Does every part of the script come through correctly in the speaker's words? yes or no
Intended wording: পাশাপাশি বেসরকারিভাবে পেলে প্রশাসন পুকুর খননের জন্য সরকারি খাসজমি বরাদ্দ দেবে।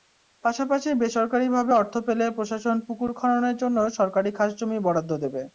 no